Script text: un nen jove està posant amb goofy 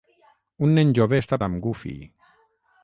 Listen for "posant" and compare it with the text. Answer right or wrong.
wrong